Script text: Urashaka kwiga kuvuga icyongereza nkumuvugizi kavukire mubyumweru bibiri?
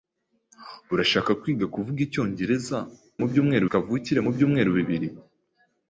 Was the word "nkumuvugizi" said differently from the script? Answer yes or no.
yes